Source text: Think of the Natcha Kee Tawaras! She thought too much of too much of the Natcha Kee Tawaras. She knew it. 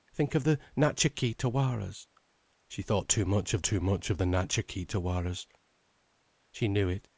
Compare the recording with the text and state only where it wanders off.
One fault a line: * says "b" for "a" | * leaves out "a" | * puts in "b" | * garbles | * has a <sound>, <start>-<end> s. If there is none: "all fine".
all fine